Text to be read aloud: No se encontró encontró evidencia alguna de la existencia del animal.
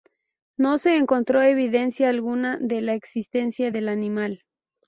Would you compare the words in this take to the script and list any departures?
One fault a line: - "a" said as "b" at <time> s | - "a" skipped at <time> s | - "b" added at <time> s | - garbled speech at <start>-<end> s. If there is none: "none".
- "encontró" skipped at 1.4 s